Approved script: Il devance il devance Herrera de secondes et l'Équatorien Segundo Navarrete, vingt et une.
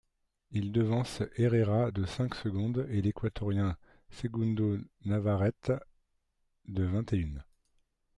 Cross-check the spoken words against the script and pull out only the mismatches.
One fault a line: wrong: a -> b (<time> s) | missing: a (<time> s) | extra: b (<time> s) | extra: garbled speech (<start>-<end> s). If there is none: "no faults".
missing: il devance (1.2 s)
extra: cinq (2.0 s)
extra: de (6.7 s)